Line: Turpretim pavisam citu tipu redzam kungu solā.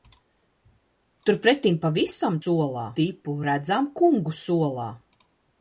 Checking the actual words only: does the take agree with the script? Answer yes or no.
no